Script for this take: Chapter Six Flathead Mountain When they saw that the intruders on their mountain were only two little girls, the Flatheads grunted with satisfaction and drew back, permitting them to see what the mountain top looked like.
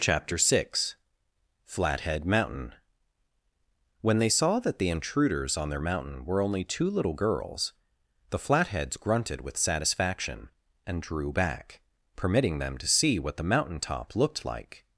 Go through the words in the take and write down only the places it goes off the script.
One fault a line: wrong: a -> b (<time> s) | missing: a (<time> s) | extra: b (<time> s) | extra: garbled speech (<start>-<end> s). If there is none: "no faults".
no faults